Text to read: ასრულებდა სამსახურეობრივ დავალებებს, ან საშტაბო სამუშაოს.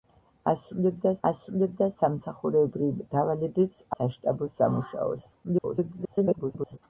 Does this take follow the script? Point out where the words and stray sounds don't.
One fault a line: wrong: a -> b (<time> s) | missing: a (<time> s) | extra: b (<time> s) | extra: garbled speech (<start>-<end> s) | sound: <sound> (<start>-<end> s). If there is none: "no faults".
extra: ასრულებდა (1.3 s)
missing: ან (3.8 s)
extra: garbled speech (5.4-6.8 s)